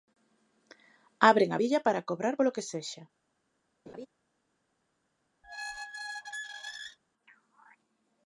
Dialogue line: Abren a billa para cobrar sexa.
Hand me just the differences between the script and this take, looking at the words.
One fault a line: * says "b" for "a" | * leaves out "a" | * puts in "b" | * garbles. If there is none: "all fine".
* puts in "polo que"